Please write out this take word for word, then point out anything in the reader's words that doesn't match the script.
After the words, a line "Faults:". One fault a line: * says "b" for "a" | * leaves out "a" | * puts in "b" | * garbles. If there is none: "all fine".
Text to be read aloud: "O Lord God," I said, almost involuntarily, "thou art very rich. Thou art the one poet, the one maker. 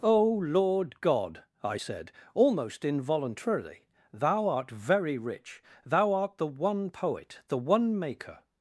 "O Lord God," I said, almost involuntarily, "thou art very rich. Thou art the one poet, the one maker.
Faults:
all fine